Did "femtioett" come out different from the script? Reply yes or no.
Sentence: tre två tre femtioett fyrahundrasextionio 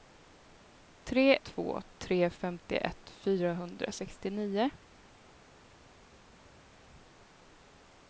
no